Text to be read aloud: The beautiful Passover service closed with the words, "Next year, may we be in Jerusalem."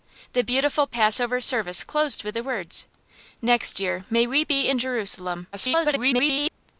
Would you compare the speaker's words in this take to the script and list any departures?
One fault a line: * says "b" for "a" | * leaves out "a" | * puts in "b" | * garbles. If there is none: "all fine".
* garbles